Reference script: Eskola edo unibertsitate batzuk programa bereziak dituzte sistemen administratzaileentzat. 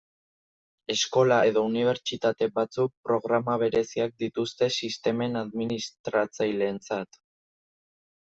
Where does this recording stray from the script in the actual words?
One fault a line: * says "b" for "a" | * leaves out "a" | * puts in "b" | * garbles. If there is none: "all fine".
all fine